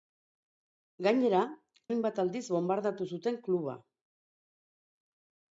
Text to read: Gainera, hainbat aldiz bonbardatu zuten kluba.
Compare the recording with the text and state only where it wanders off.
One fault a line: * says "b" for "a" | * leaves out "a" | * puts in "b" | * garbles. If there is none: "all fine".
all fine